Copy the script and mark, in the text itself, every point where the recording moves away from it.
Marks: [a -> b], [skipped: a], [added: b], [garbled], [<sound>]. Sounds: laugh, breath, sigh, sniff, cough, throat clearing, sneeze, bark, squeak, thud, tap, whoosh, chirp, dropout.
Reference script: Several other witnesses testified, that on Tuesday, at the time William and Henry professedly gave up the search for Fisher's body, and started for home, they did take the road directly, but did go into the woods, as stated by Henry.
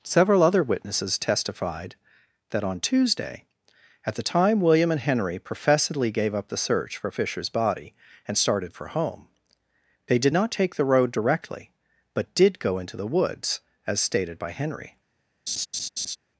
Several other witnesses testified, that on Tuesday, at the time William and Henry professedly gave up the search for Fisher's body, and started for home, they did [added: not] take the road directly, but did go into the woods, as stated by Henry. [laugh]